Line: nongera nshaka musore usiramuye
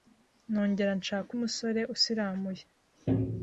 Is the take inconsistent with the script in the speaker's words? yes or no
no